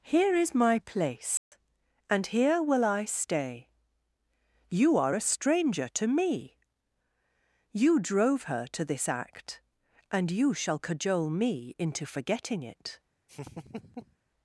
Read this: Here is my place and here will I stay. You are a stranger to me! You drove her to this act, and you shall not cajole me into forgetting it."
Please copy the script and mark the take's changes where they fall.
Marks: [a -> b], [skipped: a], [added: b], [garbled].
Here is my place and here will I stay. You are a stranger to me! You drove her to this act, and you shall [skipped: not] cajole me into forgetting it."